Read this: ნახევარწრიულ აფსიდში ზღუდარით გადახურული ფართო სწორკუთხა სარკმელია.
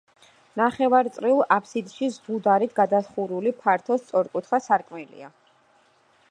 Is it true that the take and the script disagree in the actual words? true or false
false